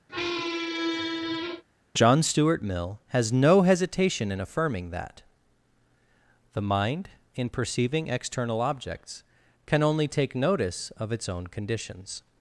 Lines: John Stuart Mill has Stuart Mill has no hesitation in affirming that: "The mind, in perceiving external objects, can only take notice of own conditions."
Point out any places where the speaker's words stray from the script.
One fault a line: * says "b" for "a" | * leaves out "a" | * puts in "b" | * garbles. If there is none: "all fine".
* leaves out "Stuart Mill has"
* puts in "its"